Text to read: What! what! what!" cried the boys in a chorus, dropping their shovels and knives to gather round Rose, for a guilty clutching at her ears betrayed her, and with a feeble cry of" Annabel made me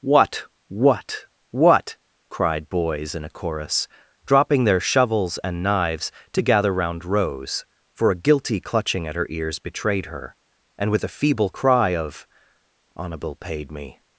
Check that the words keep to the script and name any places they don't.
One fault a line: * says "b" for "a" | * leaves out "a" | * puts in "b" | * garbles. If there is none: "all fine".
* leaves out "the"
* says "paid" for "made"